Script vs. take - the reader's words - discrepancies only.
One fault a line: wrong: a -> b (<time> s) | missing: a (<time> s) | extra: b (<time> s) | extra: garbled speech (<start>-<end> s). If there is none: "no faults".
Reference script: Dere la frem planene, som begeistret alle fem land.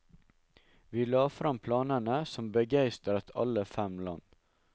wrong: Dere -> Vi (0.9 s)